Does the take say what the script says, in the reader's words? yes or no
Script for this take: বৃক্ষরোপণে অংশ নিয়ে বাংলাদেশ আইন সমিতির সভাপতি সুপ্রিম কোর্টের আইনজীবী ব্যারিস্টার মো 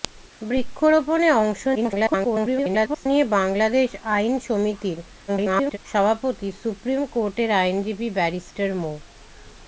no